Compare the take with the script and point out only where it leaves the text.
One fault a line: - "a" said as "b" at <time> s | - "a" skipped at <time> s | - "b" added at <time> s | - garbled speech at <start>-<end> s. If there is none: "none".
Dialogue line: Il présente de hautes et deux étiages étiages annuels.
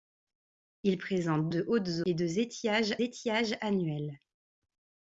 none